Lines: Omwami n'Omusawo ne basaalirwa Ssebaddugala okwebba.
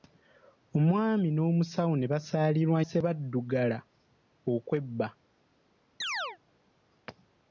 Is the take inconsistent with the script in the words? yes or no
no